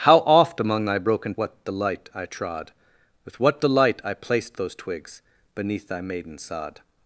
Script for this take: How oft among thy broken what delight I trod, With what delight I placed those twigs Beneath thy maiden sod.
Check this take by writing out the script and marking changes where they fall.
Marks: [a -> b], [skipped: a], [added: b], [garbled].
How oft among thy broken what delight I trod, With what delight I placed those twigs Beneath thy maiden sod.